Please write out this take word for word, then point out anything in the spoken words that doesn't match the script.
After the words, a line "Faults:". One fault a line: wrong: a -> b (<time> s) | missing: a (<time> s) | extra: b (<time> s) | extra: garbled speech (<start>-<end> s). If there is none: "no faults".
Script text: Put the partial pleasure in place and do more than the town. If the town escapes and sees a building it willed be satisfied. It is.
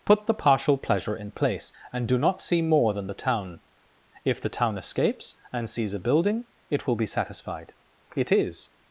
Put the partial pleasure in place and do not see more than the town. If the town escapes and sees a building it will be satisfied. It is.
Faults:
extra: not see (2.2 s)
wrong: willed -> will (6.8 s)